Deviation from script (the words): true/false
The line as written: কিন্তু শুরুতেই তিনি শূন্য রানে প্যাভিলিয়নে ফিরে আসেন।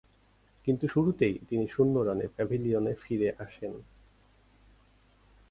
false